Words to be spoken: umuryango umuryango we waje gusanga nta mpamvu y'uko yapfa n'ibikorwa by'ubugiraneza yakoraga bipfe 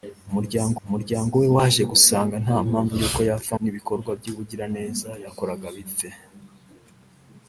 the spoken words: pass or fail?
pass